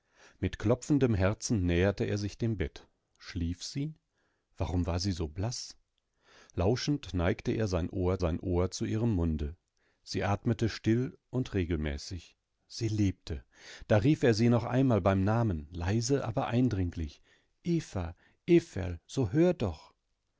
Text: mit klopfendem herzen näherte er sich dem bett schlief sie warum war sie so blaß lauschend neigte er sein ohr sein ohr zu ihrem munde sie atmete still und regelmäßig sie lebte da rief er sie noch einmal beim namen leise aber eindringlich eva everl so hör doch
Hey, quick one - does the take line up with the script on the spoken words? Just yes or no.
yes